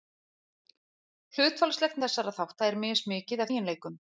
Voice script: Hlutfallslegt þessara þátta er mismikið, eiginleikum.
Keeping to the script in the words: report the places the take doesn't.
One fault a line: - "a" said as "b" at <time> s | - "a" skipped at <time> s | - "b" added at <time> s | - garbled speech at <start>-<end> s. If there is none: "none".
none